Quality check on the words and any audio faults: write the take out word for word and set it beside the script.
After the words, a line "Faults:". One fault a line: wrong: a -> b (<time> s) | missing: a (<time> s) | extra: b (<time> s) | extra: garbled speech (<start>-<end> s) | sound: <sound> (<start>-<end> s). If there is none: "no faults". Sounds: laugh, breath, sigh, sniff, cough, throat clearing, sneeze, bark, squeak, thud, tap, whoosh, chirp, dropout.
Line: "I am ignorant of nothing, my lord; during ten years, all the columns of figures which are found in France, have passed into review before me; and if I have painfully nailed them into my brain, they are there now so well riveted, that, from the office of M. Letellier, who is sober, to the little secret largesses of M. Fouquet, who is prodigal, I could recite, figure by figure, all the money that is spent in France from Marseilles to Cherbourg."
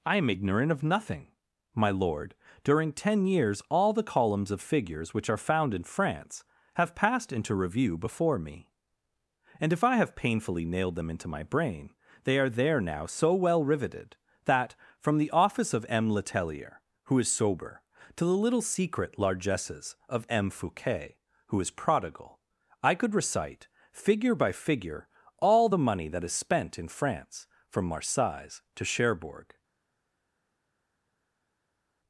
"I am ignorant of nothing, my lord; during ten years, all the columns of figures which are found in France, have passed into review before me; and if I have painfully nailed them into my brain, they are there now so well riveted, that, from the office of M. Letellier, who is sober, to the little secret largesses of M. Fouquet, who is prodigal, I could recite, figure by figure, all the money that is spent in France from Marseilles to Cherbourg."
Faults:
no faults